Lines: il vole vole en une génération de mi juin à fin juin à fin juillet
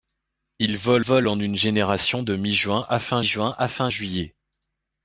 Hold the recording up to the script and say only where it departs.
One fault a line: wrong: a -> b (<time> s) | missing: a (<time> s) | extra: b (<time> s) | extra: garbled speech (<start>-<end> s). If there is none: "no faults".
no faults